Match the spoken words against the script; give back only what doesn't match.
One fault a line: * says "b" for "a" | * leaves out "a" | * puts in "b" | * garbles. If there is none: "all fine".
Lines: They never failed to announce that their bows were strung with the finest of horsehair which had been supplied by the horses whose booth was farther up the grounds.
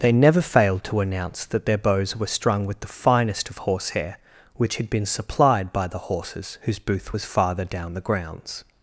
* says "down" for "up"